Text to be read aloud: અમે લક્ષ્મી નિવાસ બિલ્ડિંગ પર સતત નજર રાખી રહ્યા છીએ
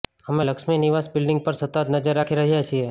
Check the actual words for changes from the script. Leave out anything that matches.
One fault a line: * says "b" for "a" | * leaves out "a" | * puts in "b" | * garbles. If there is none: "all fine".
all fine